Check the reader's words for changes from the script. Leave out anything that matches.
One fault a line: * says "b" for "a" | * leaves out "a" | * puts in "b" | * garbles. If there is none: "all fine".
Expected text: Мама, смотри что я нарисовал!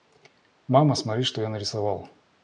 all fine